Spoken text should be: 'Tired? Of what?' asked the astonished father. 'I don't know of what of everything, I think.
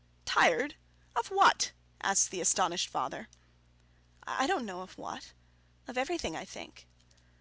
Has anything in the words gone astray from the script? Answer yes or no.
no